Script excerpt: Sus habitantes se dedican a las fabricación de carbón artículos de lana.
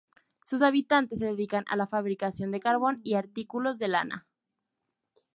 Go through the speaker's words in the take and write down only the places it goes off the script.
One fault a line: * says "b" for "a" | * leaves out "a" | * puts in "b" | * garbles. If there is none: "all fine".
* says "la" for "las"
* puts in "y"